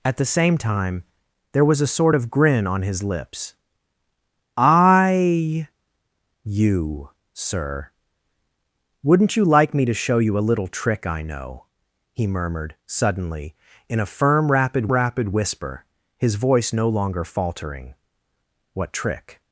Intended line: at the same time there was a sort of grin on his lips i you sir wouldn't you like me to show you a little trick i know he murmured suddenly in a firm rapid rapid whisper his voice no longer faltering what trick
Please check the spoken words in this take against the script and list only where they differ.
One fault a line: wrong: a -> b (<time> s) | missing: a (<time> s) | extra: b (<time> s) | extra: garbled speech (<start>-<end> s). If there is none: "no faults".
no faults